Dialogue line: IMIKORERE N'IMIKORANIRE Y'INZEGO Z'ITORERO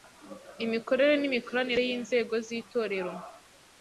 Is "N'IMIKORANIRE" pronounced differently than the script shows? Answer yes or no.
no